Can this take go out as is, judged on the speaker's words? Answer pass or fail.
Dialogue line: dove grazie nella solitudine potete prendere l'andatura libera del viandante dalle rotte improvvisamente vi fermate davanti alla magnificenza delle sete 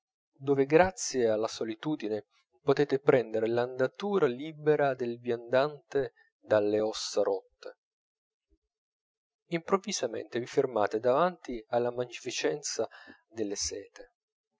fail